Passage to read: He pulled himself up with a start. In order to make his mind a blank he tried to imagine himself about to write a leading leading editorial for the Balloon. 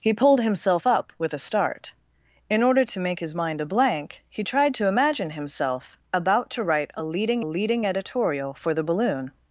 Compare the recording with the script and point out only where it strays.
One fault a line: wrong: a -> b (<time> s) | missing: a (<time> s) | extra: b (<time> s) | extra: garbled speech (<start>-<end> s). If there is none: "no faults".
no faults